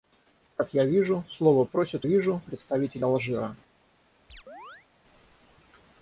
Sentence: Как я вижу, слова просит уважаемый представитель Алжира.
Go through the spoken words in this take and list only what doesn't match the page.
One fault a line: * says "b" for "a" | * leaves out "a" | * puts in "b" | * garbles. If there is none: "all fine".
* says "вижу" for "уважаемый"